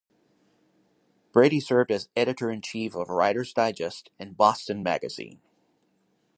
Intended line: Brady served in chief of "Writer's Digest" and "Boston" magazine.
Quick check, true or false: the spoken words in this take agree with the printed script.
false